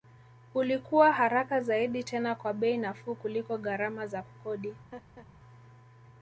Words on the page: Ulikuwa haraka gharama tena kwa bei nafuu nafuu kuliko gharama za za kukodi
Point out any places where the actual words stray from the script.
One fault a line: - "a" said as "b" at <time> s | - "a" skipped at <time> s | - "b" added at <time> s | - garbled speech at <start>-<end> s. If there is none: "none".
- "gharama" said as "zaidi" at 1.6 s
- "nafuu" skipped at 3.1 s
- "za" skipped at 4.2 s